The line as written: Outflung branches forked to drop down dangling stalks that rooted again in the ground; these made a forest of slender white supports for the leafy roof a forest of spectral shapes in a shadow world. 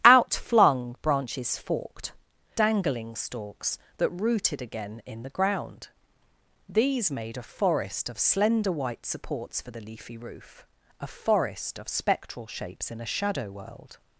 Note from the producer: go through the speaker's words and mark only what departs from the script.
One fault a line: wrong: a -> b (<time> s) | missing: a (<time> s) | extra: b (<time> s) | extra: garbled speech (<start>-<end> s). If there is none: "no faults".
missing: to drop down (2.1 s)